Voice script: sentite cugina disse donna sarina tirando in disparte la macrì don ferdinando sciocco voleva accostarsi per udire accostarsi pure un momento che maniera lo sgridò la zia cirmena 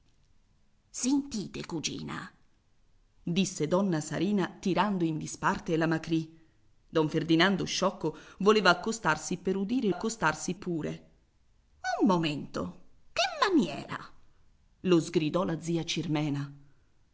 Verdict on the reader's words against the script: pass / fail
pass